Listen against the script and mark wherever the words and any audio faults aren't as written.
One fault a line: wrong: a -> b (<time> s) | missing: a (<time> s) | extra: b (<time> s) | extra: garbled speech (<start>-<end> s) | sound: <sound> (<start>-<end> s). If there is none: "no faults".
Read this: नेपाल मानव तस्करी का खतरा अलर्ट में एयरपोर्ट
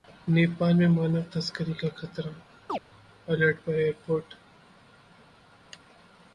extra: में (0.7 s)
sound: chirp (2.7-2.8 s)
wrong: में -> पर (3.6 s)